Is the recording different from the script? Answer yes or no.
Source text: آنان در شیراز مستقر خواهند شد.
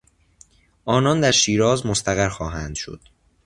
no